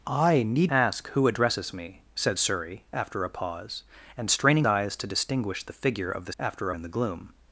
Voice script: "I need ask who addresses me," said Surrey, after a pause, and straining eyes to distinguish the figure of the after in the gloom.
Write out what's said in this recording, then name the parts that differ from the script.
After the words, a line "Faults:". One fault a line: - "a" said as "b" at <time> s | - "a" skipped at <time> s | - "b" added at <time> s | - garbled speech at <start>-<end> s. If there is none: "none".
"I need ask who addresses me," said Surrey, after a pause, and straining eyes to distinguish the figure of the after in the gloom.
Faults:
none